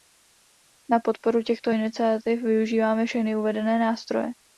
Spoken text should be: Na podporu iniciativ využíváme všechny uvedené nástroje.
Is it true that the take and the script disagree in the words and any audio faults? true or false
true